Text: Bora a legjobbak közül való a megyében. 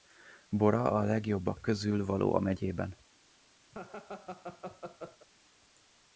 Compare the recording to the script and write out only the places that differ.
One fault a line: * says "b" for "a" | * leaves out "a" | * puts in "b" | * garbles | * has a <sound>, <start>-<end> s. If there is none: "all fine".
* has a laugh, 3.7-5.3 s